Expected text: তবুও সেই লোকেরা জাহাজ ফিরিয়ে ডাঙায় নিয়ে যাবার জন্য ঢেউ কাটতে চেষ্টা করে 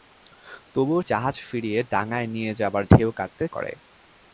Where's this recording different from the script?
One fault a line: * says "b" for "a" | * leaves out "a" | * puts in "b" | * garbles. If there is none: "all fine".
* leaves out "সেই লোকেরা"
* leaves out "জন্য"
* leaves out "চেষ্টা"